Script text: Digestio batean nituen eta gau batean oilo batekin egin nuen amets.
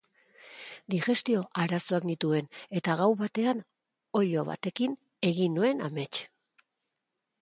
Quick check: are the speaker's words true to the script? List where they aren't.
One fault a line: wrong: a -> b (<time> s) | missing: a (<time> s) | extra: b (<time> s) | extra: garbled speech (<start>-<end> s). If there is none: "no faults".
wrong: batean -> arazoak (1.6 s)